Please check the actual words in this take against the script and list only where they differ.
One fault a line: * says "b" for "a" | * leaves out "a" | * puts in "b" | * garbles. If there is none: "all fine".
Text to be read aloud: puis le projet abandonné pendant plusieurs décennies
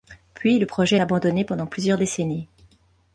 all fine